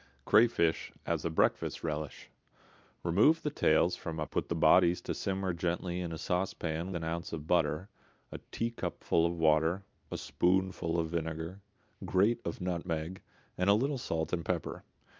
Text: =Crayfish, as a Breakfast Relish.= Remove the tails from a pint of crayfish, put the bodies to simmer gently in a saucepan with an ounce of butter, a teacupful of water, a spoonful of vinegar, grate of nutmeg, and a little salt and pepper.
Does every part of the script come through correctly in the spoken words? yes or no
no